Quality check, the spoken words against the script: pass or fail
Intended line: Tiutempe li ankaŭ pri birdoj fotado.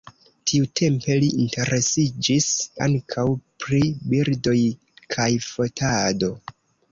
fail